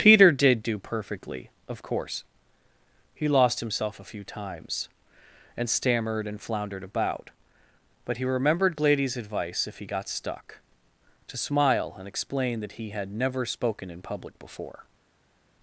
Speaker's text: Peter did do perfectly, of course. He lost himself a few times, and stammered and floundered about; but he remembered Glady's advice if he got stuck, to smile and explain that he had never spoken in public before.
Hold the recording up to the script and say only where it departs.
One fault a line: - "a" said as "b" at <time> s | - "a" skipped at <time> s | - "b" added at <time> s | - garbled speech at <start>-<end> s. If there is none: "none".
none